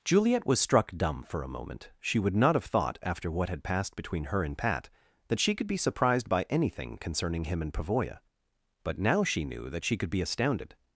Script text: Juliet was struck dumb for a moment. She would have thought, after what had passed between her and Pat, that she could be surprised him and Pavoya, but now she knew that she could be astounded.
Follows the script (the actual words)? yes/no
no